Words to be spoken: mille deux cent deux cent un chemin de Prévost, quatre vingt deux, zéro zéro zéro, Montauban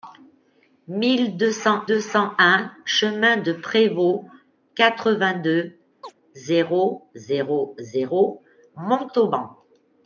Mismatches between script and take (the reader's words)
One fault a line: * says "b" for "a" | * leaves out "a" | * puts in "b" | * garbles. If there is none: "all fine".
all fine